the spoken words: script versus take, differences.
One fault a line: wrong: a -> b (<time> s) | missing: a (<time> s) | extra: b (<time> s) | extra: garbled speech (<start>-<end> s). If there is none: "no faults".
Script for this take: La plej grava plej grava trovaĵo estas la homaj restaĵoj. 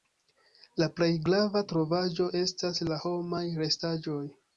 missing: plej grava (1.6 s)